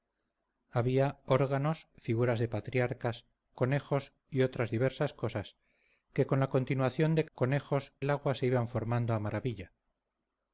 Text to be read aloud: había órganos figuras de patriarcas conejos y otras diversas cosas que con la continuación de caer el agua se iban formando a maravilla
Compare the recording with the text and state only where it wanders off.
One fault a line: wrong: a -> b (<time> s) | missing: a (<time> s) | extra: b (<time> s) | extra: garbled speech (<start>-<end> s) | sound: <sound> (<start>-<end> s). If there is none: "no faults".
wrong: caer -> conejos (7.3 s)